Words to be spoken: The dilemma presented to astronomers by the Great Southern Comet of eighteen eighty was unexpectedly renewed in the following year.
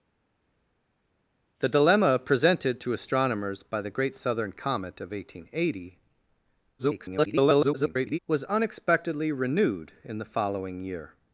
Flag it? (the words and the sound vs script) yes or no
yes